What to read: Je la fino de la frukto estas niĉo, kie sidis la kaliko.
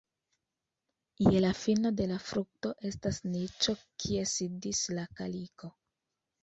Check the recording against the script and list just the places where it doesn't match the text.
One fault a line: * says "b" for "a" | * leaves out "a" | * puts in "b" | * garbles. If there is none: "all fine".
all fine